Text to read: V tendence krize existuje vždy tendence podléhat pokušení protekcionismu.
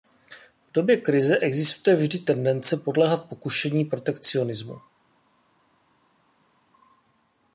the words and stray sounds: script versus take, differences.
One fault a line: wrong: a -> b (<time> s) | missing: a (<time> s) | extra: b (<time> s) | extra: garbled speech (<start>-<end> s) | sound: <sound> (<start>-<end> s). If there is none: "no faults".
wrong: tendence -> době (0.7 s)